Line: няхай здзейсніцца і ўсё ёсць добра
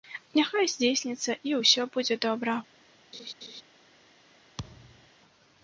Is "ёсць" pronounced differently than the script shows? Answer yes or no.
yes